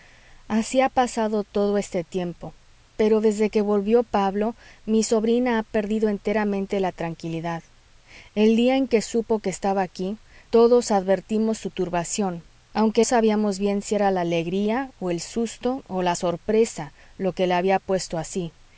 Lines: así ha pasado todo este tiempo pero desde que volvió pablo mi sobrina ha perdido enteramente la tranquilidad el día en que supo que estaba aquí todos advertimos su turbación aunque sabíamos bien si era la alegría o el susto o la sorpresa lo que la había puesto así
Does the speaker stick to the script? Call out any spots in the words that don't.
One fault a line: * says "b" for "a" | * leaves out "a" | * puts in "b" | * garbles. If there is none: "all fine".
all fine